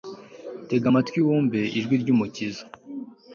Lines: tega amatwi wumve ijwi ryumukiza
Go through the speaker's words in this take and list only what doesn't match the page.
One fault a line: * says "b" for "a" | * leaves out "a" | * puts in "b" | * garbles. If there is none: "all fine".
all fine